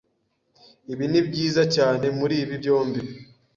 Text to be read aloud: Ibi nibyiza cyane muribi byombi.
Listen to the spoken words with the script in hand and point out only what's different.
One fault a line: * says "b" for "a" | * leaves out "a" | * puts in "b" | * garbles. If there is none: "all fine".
all fine